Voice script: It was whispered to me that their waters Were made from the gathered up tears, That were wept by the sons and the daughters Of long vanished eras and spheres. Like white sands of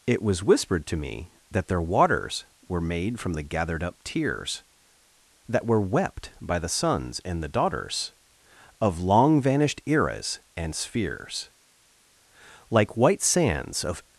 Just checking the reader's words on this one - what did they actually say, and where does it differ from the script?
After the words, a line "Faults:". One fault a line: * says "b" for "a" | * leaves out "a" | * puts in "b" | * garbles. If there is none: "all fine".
It was whispered to me that their waters Were made from the gathered up tears, That were wept by the sons and the daughters Of long vanished eras and spheres. Like white sands of
Faults:
all fine